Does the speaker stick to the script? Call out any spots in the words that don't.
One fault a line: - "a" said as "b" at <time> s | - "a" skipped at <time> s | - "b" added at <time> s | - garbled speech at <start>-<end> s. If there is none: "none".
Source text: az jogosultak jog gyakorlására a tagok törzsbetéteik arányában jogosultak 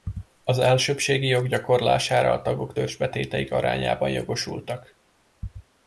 - "jogosultak" said as "elsőbbségi" at 0.6 s